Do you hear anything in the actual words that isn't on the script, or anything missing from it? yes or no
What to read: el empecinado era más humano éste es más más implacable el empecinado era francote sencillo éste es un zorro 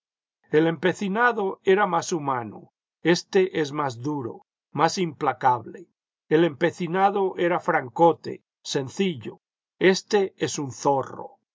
yes